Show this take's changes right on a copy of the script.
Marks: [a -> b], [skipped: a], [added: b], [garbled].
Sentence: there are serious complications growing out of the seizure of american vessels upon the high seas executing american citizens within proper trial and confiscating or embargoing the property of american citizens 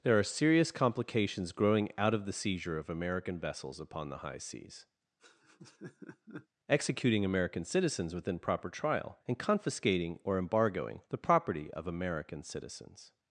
there are serious complications growing out of the seizure of american vessels upon the high seas executing american citizens within proper trial and confiscating or embargoing the property of american citizens